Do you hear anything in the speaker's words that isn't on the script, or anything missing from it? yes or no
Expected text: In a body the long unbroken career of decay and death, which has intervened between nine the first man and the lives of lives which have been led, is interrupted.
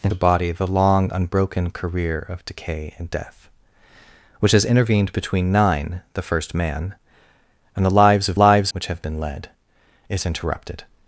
no